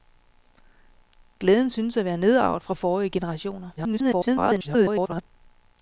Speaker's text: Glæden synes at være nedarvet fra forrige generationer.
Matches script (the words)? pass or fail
fail